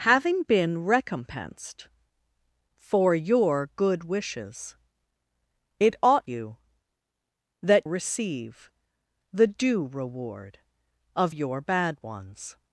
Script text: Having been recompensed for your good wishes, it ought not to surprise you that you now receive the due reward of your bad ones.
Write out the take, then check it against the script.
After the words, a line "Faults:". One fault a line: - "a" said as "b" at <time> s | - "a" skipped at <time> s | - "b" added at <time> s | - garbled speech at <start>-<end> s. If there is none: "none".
Having been recompensed for your good wishes, it ought you that receive the due reward of your bad ones.
Faults:
- "not to surprise" skipped at 6.2 s
- "you now" skipped at 7.9 s